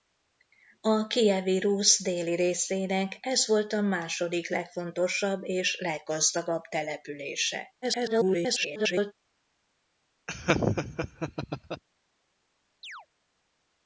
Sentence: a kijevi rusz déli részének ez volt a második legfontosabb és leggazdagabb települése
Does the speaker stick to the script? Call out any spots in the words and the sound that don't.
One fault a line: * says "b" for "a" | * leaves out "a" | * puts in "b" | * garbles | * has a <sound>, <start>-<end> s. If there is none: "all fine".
* garbles
* has a laugh, 10.3-11.8 s
* has a chirp, 12.8-13.1 s